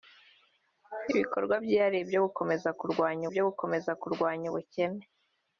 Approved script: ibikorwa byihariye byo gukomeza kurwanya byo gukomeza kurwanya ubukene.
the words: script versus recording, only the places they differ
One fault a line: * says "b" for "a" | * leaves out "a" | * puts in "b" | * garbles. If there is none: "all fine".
all fine